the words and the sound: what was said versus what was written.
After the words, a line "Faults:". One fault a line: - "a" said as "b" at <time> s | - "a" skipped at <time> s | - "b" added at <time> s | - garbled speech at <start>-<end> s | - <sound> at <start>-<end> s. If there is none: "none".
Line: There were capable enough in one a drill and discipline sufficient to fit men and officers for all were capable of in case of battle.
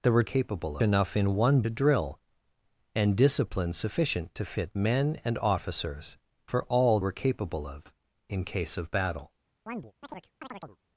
There were capable enough in one a drill and discipline sufficient to fit men and officers for all were capable of in case of battle.
Faults:
- chirp at 9.7-10.8 s